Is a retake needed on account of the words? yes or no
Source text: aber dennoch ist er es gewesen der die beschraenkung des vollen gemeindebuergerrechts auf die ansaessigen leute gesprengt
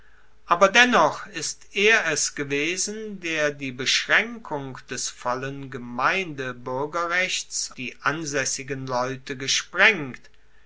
yes